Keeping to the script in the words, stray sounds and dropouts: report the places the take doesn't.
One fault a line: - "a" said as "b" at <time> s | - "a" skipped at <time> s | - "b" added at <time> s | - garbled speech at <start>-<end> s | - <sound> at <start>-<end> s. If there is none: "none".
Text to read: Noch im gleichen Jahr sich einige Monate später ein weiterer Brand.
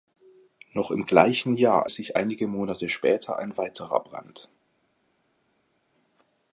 none